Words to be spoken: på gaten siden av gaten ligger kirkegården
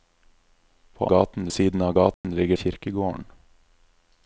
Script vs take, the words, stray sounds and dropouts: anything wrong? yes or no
yes